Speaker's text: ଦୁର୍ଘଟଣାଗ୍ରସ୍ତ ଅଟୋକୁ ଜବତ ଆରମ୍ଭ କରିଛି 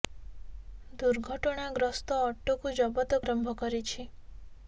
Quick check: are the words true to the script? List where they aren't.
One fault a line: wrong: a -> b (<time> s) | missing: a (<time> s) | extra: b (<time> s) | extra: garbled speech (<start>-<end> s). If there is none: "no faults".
no faults